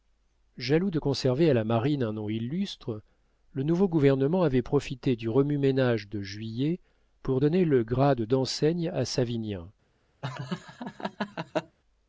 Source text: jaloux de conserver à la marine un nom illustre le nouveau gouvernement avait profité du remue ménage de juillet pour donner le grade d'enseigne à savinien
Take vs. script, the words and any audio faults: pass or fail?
fail